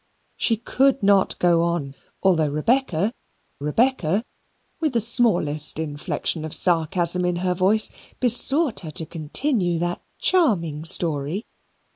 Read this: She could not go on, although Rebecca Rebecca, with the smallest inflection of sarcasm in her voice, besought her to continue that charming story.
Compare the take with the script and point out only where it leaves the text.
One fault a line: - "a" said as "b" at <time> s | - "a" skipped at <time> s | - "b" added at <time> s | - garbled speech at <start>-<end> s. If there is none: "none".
none